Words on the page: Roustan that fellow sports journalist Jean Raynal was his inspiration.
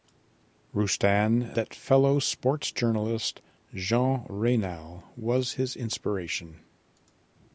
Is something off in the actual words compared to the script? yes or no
no